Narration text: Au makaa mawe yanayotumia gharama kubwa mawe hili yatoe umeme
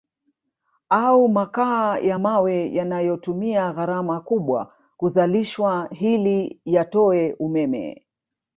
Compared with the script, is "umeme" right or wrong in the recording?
right